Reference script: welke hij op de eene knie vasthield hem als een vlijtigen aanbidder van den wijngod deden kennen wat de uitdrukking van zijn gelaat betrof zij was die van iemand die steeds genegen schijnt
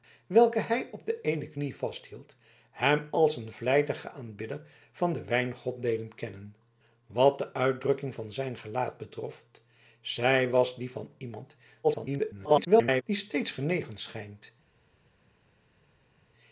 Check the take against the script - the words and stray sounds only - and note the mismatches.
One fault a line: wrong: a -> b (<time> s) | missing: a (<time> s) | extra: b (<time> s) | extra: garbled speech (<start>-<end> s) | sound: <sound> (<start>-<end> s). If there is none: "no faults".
extra: garbled speech (11.8-13.0 s)